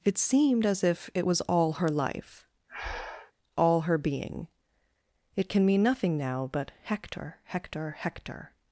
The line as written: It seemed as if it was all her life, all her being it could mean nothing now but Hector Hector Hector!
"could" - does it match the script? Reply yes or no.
no